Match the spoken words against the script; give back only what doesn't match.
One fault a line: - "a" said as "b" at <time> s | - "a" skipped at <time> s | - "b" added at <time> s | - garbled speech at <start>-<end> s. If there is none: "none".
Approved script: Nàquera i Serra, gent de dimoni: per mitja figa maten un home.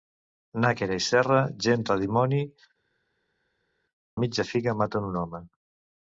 - "per" skipped at 2.4 s